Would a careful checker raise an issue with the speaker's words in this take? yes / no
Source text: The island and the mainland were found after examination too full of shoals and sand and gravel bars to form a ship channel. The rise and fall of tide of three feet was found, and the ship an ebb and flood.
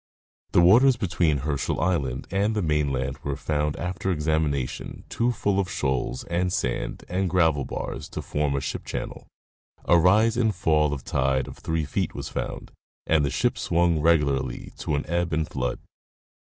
yes